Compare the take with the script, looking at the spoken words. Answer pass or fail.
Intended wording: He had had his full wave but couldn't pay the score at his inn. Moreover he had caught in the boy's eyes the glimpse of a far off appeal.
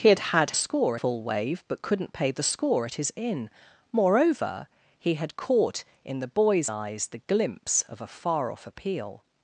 fail